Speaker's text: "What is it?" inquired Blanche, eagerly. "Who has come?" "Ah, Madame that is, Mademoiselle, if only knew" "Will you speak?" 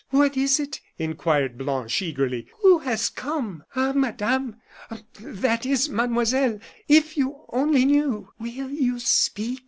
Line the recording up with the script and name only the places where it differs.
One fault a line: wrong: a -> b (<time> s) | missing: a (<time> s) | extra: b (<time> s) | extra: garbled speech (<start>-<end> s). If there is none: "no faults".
extra: you (7.2 s)